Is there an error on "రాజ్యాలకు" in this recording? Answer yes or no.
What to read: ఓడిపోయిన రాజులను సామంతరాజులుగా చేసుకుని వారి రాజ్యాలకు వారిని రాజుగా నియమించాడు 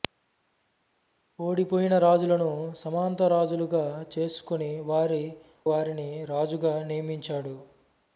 yes